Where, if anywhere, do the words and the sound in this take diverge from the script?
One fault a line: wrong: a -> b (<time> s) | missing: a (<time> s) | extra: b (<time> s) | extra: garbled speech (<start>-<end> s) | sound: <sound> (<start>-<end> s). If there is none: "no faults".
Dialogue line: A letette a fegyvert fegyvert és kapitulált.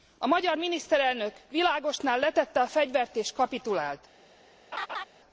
extra: magyar miniszterelnök Világosnál (0.3 s)
missing: fegyvert (3.2 s)
sound: laugh (4.7-5.0 s)